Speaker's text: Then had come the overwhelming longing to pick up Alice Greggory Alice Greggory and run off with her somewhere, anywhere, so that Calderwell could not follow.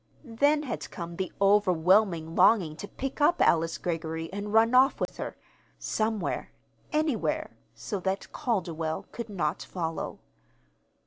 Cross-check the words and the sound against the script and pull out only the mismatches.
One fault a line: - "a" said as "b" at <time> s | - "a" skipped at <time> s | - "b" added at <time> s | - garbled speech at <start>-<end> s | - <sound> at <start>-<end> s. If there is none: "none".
- "Alice Greggory" skipped at 4.3 s
- dropout at 5.1-5.1 s